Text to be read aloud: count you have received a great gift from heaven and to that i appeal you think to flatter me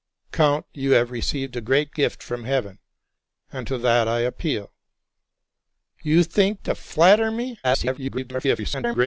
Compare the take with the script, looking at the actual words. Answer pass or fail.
fail